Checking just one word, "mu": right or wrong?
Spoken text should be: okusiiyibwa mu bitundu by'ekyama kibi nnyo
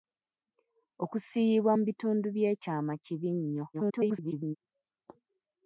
right